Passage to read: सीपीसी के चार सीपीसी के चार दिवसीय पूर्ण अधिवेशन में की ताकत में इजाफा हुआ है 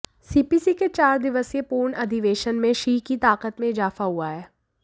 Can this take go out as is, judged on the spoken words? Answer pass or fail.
fail